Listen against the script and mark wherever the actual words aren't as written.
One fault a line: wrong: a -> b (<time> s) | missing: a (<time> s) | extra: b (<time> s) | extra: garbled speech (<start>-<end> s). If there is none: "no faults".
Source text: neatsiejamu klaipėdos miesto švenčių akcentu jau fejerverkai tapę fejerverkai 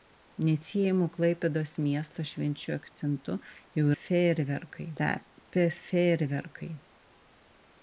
no faults